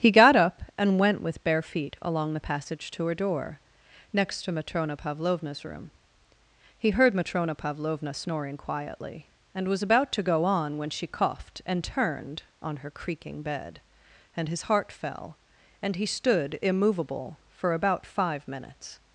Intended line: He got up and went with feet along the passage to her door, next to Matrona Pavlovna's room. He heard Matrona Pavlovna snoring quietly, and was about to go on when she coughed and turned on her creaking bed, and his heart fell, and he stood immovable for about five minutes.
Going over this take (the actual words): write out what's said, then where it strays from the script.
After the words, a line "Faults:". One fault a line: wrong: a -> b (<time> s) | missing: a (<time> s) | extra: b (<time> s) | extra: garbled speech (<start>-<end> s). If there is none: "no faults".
He got up and went with bare feet along the passage to her door, next to Matrona Pavlovna's room. He heard Matrona Pavlovna snoring quietly, and was about to go on when she coughed and turned on her creaking bed, and his heart fell, and he stood immovable for about five minutes.
Faults:
extra: bare (1.4 s)